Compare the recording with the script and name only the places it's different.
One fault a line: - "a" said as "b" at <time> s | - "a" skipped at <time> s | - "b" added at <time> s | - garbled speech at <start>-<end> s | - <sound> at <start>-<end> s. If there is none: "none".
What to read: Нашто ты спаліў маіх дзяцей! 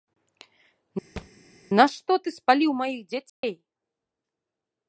- thud at 1.2-1.3 s
- dropout at 3.3-3.4 s